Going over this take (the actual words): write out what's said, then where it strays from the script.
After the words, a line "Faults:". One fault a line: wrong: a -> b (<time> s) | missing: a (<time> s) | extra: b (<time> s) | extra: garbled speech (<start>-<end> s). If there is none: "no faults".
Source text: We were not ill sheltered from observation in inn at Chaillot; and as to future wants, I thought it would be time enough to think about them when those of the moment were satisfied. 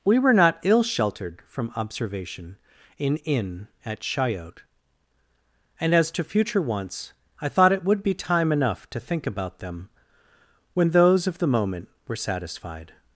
We were not ill sheltered from observation in inn at Chaillot; and as to future wants, I thought it would be time enough to think about them when those of the moment were satisfied.
Faults:
no faults